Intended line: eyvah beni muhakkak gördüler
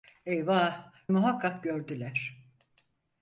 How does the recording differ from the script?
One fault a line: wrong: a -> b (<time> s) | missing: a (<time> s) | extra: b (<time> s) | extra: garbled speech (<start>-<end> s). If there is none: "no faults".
missing: beni (0.9 s)